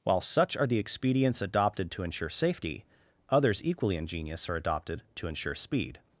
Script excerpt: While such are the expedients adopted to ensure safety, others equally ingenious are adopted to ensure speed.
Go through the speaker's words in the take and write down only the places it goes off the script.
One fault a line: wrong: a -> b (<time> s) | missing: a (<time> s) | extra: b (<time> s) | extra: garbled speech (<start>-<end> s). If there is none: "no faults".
no faults